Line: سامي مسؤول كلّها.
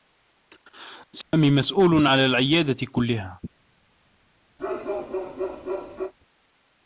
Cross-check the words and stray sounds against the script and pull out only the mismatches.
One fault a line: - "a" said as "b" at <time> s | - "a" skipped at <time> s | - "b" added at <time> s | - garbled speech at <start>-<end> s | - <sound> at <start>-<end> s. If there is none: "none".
- dropout at 1.2-1.3 s
- "على العيادة" added at 2.1 s
- bark at 4.6-6.1 s